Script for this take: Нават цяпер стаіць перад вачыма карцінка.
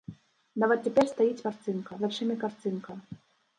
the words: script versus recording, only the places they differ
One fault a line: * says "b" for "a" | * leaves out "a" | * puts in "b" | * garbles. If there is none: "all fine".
* says "карцінка" for "перад"